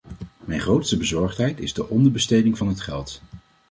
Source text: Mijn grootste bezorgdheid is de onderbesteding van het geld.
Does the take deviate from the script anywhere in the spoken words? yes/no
no